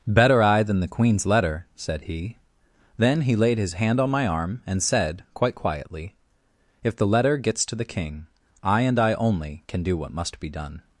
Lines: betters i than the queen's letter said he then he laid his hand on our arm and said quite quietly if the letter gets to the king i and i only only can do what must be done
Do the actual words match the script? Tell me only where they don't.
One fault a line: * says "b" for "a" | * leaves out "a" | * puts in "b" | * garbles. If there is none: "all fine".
* says "better" for "betters"
* says "my" for "our"
* leaves out "only"